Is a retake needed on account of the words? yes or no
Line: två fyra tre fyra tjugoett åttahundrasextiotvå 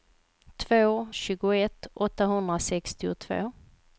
yes